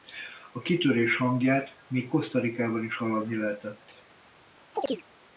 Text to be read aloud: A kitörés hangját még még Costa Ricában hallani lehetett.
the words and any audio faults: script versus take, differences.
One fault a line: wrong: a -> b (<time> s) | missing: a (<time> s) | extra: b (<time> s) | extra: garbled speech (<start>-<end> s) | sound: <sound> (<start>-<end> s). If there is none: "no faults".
missing: még (2.1 s)
extra: is (2.8 s)
sound: chirp (4.7-5.0 s)